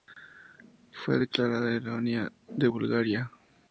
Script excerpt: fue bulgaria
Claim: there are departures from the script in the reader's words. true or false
true